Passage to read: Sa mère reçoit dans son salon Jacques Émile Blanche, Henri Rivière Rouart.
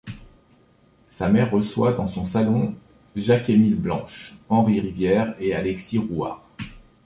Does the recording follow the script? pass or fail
fail